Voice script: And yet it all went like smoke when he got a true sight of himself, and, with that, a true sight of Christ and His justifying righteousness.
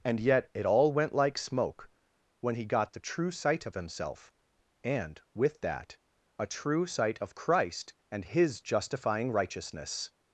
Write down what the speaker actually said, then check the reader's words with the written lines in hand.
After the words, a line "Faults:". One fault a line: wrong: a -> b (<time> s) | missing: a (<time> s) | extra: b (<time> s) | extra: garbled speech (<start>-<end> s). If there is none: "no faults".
And yet it all went like smoke when he got the true sight of himself, and, with that, a true sight of Christ and His justifying righteousness.
Faults:
wrong: a -> the (2.9 s)